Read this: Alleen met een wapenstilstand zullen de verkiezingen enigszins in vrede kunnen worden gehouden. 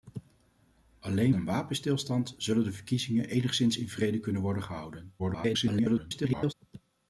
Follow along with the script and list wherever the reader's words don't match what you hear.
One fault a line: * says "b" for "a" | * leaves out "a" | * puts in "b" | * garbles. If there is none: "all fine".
* leaves out "met"
* garbles